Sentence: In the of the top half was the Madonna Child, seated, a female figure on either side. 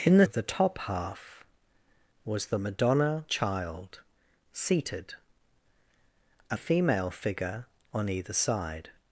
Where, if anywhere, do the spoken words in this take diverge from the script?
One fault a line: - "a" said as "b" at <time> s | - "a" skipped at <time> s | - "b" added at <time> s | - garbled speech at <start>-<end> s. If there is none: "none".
none